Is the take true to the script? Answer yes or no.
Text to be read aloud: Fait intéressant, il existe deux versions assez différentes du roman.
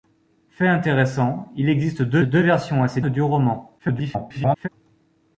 no